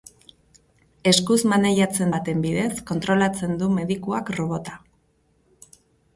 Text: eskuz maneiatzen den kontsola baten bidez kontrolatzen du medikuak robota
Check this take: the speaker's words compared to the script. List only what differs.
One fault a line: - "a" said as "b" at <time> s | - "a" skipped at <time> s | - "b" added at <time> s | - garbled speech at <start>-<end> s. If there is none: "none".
- "den kontsola" skipped at 2.1 s